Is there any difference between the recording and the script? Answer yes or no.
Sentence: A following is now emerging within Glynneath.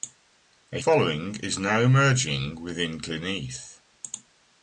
no